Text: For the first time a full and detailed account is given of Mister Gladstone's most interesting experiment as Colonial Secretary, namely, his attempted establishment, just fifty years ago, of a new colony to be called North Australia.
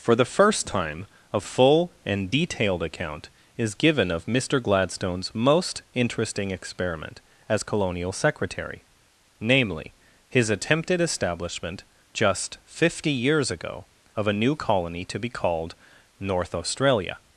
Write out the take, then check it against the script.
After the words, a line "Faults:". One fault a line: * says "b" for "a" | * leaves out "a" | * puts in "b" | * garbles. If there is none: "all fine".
For the first time a full and detailed account is given of Mister Gladstone's most interesting experiment as Colonial Secretary, namely, his attempted establishment, just fifty years ago, of a new colony to be called North Australia.
Faults:
all fine